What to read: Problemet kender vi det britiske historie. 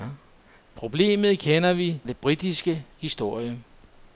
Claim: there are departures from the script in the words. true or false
false